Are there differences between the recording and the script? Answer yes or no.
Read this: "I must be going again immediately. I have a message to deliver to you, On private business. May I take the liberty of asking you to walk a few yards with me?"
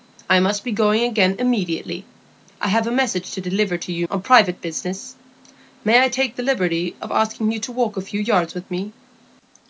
no